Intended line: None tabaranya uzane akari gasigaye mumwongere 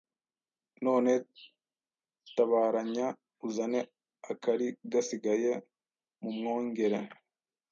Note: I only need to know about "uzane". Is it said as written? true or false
true